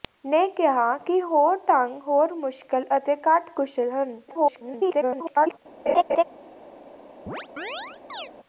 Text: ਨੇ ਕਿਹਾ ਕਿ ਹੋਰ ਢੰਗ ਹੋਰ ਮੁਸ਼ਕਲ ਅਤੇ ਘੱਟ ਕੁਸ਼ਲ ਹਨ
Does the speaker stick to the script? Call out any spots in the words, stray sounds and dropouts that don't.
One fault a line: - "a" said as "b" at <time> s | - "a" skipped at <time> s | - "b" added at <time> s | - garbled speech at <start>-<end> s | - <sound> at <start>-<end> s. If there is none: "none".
- garbled speech at 4.3-5.6 s
- laugh at 5.9-6.2 s
- chirp at 7.3-8.3 s